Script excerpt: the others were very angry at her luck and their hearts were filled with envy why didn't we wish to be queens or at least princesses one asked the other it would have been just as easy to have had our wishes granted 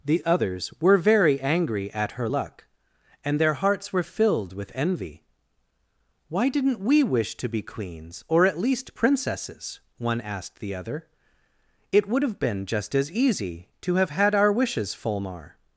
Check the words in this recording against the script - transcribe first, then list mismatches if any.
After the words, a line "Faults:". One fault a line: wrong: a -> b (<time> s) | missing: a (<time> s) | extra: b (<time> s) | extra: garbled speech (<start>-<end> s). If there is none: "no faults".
the others were very angry at her luck and their hearts were filled with envy why didn't we wish to be queens or at least princesses one asked the other it would have been just as easy to have had our wishes fulmar
Faults:
wrong: granted -> fulmar (14.9 s)